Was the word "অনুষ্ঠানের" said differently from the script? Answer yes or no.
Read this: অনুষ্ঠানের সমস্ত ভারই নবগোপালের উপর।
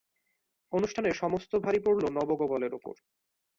no